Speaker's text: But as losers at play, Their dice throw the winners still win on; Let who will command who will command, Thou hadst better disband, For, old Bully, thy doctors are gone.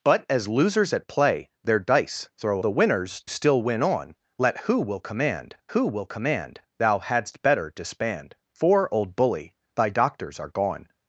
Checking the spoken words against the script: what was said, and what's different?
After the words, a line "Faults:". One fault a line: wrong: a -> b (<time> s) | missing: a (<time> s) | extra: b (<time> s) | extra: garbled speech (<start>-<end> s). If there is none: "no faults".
But as losers at play, Their dice throw the winners still win on; Let who will command who will command, Thou hadst better disband, For, old Bully, thy doctors are gone.
Faults:
no faults